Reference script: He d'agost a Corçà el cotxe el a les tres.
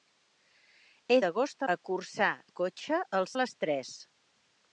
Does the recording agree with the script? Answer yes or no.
yes